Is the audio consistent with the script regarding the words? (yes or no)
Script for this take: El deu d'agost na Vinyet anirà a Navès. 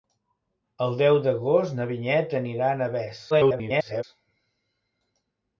no